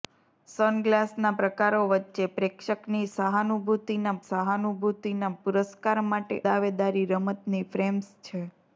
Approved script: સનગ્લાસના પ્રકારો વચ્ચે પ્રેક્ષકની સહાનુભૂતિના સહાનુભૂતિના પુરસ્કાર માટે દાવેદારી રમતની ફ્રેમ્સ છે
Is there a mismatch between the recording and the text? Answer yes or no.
no